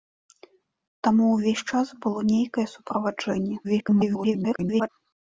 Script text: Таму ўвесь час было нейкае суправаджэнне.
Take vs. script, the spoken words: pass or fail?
fail